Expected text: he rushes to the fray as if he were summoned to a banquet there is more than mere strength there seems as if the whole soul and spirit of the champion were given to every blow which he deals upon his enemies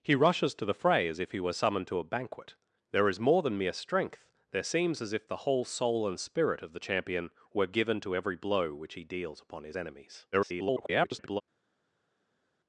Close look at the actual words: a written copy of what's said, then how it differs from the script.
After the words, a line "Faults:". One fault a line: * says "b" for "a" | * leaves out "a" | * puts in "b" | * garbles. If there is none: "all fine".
he rushes to the fray as if he were summoned to a banquet there is more than mere strength there seems as if the whole soul and spirit of the champion were given to every blow which he deals upon his enemies [garbled]
Faults:
* garbles